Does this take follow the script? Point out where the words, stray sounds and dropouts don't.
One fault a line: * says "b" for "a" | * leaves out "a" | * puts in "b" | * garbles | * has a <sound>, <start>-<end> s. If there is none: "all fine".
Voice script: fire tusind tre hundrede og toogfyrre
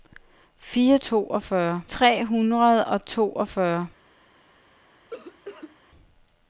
* says "toogfyrre" for "tusind"
* has a cough, 5.1-5.8 s